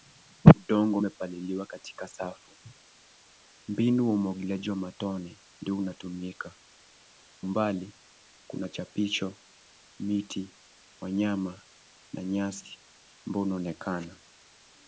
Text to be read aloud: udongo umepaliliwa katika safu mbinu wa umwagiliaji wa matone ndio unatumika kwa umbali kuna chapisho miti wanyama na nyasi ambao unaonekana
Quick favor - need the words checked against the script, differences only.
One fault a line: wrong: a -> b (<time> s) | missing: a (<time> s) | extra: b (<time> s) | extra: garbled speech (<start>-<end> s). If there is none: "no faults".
missing: kwa (6.5 s)